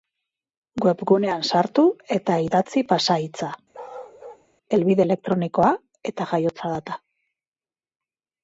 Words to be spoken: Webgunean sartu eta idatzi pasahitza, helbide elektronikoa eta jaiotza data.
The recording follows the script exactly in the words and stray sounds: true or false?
false